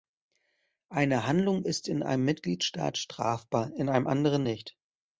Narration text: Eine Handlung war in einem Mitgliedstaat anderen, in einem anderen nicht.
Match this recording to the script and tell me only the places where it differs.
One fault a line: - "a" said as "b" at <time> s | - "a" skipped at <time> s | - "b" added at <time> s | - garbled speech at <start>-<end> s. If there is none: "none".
- "war" said as "ist" at 1.6 s
- "anderen" said as "strafbar" at 3.0 s